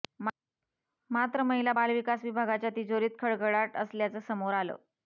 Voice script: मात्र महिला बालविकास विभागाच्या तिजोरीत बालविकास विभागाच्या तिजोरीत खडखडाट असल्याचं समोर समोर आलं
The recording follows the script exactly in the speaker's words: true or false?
false